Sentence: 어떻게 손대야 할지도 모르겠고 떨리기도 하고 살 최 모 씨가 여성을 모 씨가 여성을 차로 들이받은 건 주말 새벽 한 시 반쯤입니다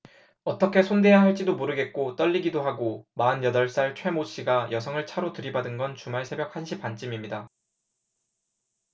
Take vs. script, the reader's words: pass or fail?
fail